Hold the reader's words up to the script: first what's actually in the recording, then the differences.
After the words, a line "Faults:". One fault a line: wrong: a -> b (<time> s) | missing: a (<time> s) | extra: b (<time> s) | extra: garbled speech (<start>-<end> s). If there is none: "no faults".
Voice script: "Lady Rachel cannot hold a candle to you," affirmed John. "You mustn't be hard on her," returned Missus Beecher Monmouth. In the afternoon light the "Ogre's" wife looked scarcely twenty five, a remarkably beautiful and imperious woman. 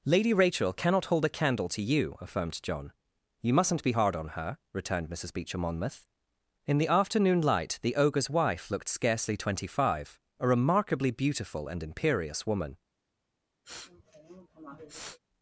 "Lady Rachel cannot hold a candle to you," affirmed John. "You mustn't be hard on her," returned Missus Beecher Monmouth. In the afternoon light the "Ogre's" wife looked scarcely twenty five, a remarkably beautiful and imperious woman.
Faults:
no faults